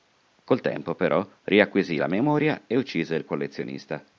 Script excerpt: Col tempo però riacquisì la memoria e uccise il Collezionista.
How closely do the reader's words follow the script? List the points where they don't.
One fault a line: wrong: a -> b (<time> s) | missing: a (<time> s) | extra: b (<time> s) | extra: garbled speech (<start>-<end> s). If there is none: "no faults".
no faults